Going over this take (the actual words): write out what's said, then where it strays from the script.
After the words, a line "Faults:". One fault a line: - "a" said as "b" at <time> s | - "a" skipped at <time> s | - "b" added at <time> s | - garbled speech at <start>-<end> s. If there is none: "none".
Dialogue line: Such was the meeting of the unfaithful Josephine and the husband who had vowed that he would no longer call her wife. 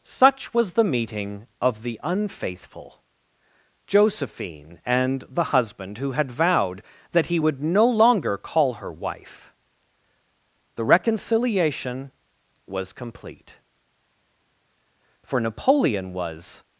Such was the meeting of the unfaithful Josephine and the husband who had vowed that he would no longer call her wife. The reconciliation was complete; for Napoleon was
Faults:
- "The reconciliation was complete for Napoleon was" added at 10.7 s